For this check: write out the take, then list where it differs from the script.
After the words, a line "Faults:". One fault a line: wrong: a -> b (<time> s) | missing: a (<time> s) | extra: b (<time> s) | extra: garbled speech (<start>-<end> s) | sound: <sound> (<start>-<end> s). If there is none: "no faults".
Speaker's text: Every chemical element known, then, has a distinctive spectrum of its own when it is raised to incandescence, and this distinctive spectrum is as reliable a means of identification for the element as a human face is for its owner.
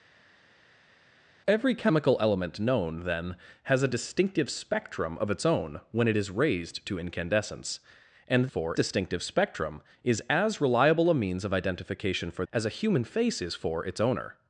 Every chemical element known, then, has a distinctive spectrum of its own when it is raised to incandescence, and for distinctive spectrum is as reliable a means of identification for as a human face is for its owner.
Faults:
wrong: this -> for (8.5 s)
missing: the element (12.4 s)